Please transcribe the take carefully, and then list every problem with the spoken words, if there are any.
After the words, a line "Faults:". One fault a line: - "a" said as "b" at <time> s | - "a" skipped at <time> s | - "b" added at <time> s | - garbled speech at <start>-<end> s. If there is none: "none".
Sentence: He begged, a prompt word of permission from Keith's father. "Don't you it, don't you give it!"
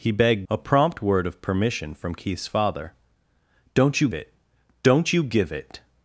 He begged, a prompt word of permission from Keith's father. "Don't you it, don't you give it!"
Faults:
none